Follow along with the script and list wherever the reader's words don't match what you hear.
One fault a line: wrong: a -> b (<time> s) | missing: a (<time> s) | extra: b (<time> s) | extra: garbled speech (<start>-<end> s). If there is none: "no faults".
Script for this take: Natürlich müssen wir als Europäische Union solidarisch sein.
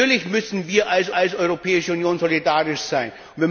extra: als (1.1 s)